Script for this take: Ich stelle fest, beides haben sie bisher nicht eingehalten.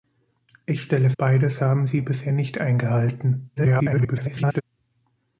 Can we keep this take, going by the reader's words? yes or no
no